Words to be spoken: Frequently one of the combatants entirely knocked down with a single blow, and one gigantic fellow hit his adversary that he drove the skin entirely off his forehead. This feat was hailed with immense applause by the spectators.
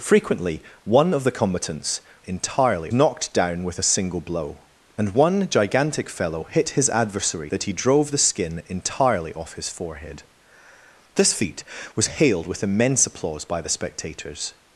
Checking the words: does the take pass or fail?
pass